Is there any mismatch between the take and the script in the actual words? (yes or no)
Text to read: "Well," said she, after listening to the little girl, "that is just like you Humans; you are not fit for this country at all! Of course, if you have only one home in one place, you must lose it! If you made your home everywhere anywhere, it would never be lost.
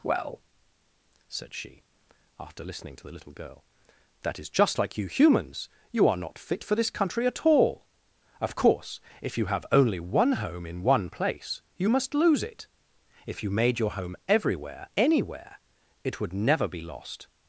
no